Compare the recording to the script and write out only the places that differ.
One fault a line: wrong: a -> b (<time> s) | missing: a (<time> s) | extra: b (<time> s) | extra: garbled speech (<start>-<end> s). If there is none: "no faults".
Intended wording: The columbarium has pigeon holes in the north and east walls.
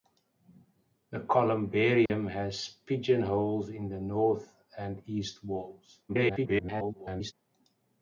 extra: garbled speech (6.1-7.3 s)